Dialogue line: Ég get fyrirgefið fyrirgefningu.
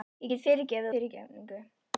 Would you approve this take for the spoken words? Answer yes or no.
yes